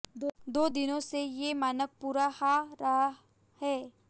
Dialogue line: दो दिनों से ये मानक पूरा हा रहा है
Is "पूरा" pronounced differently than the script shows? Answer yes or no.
no